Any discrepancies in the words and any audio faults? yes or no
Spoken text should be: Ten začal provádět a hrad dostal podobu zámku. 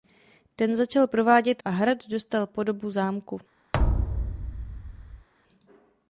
yes